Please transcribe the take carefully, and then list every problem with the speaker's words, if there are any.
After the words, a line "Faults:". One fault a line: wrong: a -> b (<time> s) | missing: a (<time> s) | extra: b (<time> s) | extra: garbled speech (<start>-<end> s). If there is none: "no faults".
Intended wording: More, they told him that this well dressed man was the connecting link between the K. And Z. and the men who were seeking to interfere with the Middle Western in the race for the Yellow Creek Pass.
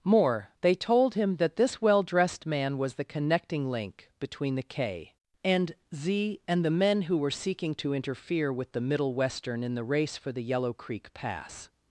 More, they told him that this well dressed man was the connecting link between the K. And Z. and the men who were seeking to interfere with the Middle Western in the race for the Yellow Creek Pass.
Faults:
no faults